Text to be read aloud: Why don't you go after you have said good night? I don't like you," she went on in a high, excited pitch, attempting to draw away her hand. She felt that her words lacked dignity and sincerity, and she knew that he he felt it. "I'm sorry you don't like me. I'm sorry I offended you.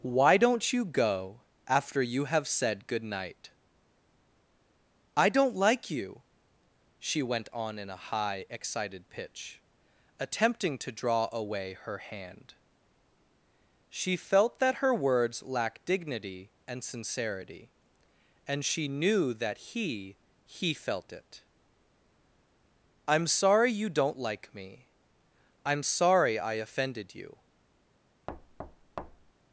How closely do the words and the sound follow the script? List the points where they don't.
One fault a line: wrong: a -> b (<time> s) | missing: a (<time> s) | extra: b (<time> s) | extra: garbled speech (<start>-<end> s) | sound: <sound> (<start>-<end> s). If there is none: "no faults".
sound: thud (28.3-29.3 s)